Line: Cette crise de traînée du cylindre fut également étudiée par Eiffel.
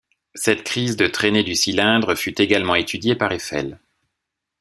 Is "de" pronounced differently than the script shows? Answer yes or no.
no